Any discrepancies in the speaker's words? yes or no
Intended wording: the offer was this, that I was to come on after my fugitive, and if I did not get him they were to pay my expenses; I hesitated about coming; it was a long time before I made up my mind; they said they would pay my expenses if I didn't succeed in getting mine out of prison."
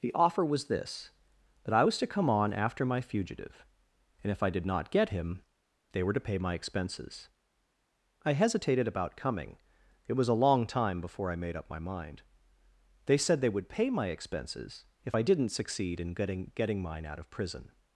yes